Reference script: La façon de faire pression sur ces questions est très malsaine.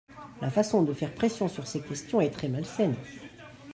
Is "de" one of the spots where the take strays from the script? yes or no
no